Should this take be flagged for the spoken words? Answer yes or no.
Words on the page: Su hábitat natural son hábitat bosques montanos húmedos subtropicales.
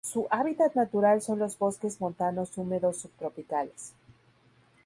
yes